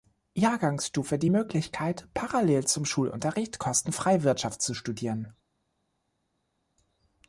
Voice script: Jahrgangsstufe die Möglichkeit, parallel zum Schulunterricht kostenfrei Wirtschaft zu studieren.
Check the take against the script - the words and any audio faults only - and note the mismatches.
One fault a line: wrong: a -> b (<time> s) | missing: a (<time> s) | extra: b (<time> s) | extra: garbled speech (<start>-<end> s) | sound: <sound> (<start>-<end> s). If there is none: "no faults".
no faults